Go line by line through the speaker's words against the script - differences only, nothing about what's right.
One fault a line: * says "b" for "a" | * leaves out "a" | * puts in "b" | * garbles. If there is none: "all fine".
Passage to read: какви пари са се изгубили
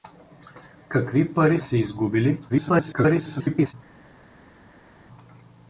* leaves out "са"
* garbles